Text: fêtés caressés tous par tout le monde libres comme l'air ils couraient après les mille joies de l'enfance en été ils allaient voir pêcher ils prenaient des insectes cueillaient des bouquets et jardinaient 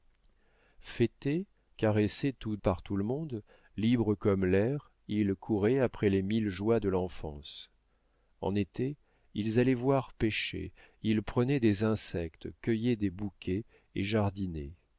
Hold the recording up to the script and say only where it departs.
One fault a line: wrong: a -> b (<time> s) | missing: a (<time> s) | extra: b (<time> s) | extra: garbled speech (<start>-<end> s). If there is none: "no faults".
no faults